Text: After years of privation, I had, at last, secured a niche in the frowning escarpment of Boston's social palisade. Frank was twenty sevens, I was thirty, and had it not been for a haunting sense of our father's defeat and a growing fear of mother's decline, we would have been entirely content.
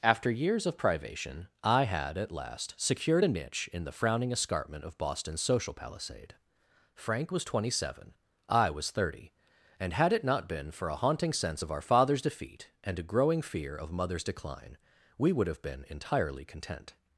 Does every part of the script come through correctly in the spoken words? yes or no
no